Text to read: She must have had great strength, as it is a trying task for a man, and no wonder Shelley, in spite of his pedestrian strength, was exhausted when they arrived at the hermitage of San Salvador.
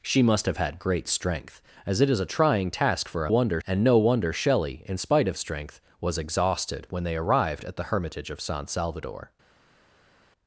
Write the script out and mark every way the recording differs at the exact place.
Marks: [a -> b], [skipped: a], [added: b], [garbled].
She must have had great strength, as it is a trying task for a [man, -> wonder] and no wonder Shelley, in spite of [skipped: his pedestrian] strength, was exhausted when they arrived at the hermitage of San Salvador.